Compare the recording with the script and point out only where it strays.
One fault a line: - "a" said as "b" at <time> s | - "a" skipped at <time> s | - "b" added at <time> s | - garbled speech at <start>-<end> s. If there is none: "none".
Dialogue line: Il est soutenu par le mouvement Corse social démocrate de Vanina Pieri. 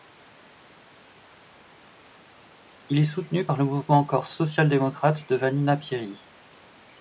none